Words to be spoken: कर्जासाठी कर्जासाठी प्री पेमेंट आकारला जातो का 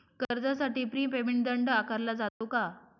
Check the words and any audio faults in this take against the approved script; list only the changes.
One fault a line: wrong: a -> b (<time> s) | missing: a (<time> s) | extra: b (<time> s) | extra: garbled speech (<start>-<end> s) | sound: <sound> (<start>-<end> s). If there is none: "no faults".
missing: कर्जासाठी (0.8 s)
extra: दंड (1.4 s)
sound: dropout (2.3-2.4 s)